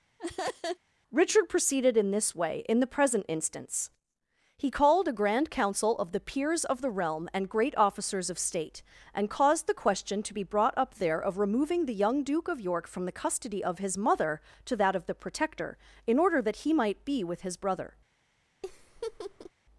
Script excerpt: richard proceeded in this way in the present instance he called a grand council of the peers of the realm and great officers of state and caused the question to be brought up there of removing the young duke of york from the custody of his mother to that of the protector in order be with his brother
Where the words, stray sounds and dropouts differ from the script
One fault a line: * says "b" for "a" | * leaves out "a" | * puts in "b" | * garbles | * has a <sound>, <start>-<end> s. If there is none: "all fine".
* has a laugh, 0.2-0.8 s
* puts in "that he might"
* has a laugh, 18.6-19.5 s